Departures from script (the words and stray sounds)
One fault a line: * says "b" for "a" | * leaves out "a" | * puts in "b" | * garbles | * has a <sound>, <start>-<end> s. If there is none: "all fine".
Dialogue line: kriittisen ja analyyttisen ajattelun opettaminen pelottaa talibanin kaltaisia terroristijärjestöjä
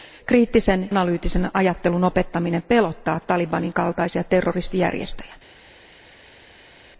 * leaves out "ja"